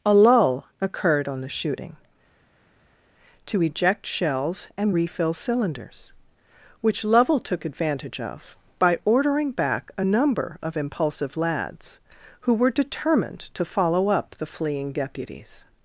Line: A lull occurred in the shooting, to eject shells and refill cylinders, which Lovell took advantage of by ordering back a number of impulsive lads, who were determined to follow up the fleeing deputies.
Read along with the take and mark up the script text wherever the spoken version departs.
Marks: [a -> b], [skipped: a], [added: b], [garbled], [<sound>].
A lull occurred [in -> on] the shooting, to eject shells and refill cylinders, which Lovell took advantage of by ordering back a number of impulsive lads, who were determined to follow up the fleeing deputies.